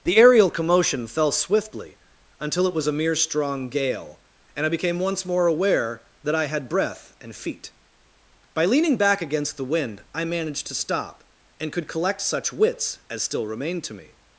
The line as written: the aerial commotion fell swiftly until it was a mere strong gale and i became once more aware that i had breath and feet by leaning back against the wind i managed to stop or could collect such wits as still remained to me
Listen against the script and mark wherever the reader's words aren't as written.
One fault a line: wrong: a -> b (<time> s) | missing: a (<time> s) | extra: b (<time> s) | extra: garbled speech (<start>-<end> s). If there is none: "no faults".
wrong: or -> and (11.6 s)